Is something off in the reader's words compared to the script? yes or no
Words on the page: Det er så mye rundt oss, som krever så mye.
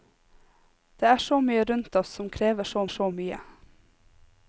yes